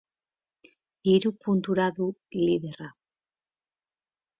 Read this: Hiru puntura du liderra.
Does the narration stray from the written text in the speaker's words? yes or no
no